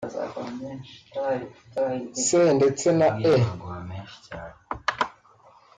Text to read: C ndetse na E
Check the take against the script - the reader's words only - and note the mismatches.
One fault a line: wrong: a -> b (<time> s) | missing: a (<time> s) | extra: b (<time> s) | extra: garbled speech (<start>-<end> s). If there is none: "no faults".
no faults